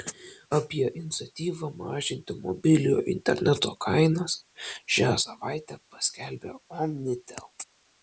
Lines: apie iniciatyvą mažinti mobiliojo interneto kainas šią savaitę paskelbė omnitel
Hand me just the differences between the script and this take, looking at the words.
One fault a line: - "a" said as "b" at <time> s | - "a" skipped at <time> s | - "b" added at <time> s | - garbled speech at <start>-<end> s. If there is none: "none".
none